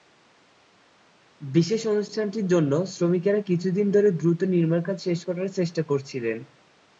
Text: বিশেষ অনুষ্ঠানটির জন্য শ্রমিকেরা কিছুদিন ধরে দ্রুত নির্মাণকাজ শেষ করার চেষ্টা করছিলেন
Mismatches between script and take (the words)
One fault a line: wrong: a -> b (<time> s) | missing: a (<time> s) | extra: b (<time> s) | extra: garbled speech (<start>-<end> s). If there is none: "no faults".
no faults